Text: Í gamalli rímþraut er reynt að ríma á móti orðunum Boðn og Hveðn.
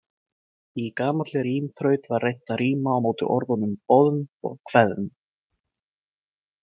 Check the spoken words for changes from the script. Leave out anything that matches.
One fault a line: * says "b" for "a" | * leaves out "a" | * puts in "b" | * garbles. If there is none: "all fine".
* says "var" for "er"